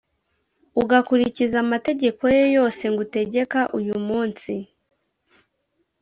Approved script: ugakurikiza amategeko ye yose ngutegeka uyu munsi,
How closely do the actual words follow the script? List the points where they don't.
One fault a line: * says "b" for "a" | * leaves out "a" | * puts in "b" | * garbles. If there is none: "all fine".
all fine